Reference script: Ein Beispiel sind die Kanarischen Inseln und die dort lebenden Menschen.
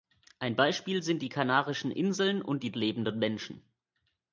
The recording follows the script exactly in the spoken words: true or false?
false